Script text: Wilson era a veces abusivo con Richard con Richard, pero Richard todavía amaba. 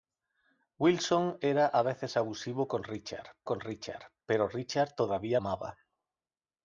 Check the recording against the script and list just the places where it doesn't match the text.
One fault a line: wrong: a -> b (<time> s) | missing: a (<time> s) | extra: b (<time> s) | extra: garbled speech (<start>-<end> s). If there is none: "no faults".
no faults